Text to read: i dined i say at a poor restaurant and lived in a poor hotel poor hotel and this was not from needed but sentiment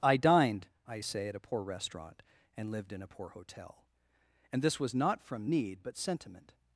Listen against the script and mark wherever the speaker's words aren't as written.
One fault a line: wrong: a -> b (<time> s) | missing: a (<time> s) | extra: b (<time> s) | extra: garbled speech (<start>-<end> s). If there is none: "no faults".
missing: poor hotel (3.8 s)
wrong: needed -> need (5.5 s)